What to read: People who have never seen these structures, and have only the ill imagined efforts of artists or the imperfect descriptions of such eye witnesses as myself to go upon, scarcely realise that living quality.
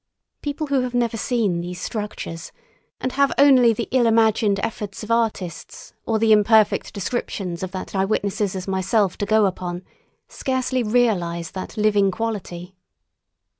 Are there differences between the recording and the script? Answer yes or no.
yes